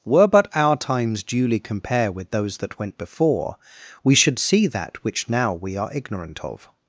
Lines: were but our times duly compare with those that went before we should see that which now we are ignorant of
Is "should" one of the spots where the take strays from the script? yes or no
no